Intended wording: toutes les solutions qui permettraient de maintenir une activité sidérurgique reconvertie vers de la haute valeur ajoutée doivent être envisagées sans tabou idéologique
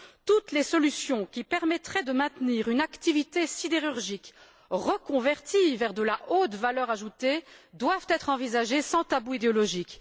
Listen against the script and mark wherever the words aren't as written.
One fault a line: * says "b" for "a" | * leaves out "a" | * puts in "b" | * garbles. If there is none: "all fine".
all fine